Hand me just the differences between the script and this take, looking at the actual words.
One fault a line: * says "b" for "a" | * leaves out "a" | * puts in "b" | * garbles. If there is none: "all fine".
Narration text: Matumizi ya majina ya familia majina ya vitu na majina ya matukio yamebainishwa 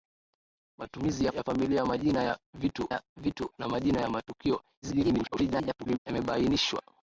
* leaves out "majina"
* puts in "ya vitu"
* garbles